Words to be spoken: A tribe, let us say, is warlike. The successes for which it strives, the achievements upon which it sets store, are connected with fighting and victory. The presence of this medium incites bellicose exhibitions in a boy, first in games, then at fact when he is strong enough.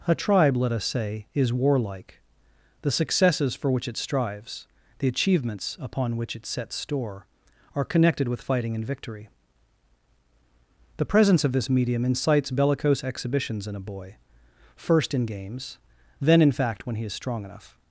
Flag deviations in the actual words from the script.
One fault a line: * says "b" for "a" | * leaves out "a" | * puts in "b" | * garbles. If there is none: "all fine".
* says "in" for "at"